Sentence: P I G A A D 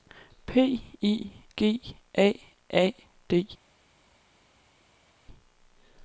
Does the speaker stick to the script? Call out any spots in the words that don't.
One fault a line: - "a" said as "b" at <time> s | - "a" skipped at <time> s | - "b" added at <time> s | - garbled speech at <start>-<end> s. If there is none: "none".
none